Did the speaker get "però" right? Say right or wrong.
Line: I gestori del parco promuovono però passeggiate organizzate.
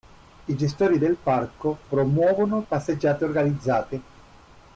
wrong